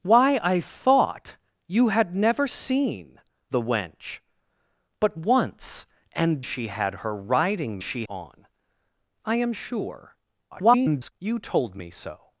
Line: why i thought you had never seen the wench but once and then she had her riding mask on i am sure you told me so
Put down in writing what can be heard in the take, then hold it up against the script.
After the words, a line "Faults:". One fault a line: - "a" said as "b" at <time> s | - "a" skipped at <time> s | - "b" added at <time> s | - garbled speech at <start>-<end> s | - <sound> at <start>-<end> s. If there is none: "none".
why i thought you had never seen the wench but once and she had her riding she on i am sure [garbled] you told me so
Faults:
- "then" skipped at 6.4 s
- "mask" said as "she" at 7.8 s
- garbled speech at 10.5-11.1 s